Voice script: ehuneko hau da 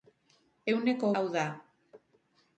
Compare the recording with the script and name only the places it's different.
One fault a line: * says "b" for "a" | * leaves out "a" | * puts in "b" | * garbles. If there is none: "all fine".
all fine